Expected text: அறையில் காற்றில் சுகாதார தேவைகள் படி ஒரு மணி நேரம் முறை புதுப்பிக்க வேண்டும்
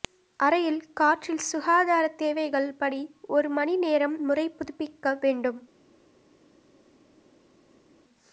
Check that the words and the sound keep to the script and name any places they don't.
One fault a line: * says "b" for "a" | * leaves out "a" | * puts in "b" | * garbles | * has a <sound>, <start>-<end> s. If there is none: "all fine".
all fine